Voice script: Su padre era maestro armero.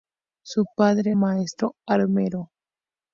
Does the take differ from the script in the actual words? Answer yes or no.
yes